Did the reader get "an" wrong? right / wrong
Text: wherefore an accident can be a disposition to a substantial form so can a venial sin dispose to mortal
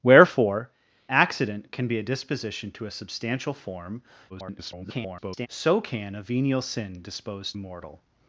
wrong